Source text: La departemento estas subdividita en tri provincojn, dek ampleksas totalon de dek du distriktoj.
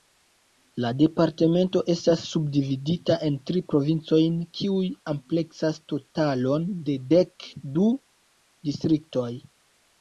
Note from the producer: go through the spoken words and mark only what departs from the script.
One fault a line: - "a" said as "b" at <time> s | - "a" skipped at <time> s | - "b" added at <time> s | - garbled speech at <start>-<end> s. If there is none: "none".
- "dek" said as "kiuj" at 4.6 s